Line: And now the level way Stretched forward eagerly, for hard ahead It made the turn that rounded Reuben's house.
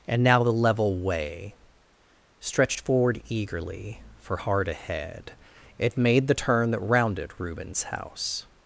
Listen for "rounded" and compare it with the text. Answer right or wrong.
right